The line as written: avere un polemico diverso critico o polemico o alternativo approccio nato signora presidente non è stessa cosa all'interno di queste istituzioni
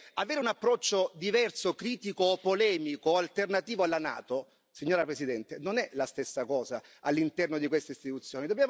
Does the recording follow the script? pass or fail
fail